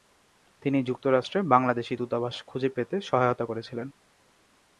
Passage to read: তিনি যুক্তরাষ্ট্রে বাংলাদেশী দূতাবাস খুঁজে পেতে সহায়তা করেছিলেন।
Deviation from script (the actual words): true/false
false